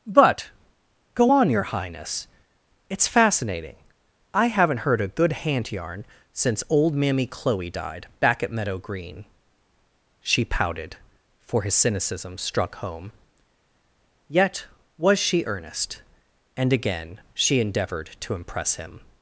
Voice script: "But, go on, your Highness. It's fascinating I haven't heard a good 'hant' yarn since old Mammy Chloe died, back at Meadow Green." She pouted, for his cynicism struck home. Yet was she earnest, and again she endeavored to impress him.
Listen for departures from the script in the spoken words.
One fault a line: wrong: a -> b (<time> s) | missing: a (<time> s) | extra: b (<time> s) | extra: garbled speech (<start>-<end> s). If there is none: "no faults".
no faults